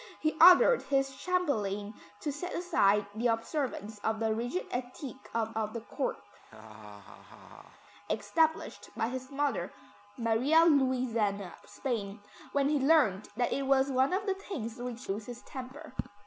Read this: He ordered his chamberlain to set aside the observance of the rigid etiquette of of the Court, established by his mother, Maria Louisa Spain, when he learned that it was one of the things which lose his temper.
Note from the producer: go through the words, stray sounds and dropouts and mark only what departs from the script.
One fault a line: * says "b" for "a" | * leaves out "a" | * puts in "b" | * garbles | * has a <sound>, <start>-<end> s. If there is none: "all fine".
* has a laugh, 6.4-7.8 s